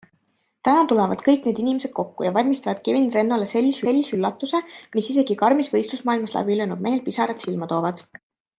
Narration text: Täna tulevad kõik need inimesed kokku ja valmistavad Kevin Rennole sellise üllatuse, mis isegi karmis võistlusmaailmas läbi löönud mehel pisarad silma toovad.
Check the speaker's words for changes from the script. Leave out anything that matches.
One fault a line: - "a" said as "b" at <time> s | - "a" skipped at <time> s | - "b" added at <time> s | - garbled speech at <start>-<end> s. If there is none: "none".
- "sellise" added at 3.8 s